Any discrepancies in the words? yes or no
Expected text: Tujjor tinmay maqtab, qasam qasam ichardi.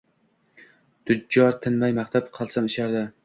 yes